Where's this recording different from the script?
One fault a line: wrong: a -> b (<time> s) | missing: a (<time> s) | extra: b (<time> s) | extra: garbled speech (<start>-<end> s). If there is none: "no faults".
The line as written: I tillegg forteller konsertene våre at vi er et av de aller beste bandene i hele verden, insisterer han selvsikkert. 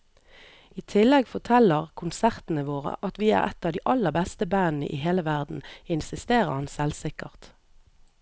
no faults